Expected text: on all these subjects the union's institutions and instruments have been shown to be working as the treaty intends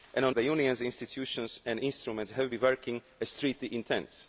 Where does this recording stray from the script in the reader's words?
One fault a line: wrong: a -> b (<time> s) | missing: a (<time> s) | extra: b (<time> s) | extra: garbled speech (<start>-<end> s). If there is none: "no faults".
missing: all these subjects (0.3 s)
missing: been shown to (2.5 s)